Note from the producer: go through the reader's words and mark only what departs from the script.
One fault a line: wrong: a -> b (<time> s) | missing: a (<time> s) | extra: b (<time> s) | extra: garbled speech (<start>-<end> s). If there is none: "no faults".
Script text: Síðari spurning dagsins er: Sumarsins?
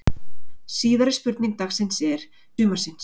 no faults